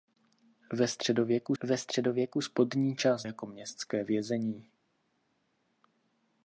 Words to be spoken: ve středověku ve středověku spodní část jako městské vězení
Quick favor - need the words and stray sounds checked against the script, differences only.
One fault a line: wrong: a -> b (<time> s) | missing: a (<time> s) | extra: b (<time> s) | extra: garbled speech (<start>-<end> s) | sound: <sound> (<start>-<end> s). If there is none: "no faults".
no faults